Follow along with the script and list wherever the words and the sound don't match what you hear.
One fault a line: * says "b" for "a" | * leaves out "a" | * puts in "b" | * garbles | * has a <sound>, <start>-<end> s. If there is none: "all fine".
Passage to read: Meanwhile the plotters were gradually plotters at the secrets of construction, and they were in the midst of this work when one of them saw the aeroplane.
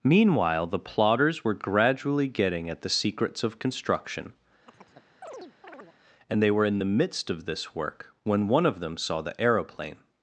* says "getting" for "plotters"
* has a chirp, 4.7-6.0 s